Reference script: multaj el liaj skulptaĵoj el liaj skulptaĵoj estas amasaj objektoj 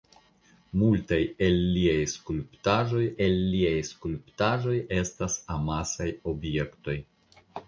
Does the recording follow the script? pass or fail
pass